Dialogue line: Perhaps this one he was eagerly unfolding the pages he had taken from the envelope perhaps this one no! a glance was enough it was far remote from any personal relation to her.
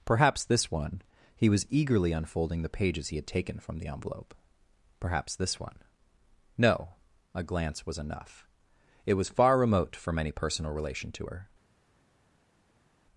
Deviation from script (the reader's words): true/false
false